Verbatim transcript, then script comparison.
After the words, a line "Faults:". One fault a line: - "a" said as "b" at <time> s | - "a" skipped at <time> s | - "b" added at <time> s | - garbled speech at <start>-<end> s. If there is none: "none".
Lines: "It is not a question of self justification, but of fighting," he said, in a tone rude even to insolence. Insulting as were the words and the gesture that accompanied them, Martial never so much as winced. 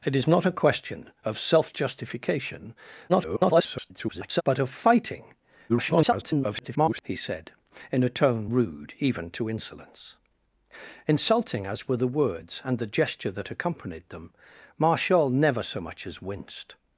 "It is not a question of self justification, [garbled] but of fighting," [garbled] he said, in a tone rude even to insolence. Insulting as were the words and the gesture that accompanied them, Martial never so much as winced.
Faults:
- garbled speech at 3.1-4.4 s
- garbled speech at 5.7-7.0 s